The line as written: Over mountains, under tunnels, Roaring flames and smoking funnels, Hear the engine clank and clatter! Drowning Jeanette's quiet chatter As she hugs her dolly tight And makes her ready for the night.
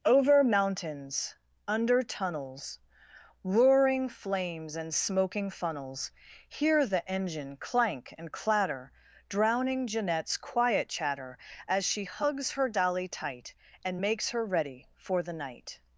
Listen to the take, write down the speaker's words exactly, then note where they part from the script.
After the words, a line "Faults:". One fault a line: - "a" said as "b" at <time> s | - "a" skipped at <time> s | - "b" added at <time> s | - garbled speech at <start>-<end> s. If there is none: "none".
Over mountains, under tunnels, Roaring flames and smoking funnels, Hear the engine clank and clatter! Drowning Jeanette's quiet chatter As she hugs her dolly tight And makes her ready for the night.
Faults:
none